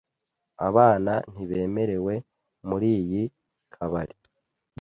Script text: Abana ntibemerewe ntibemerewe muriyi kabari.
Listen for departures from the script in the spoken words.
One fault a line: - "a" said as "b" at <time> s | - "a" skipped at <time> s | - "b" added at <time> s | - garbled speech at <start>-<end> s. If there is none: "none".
- "ntibemerewe" skipped at 2.1 s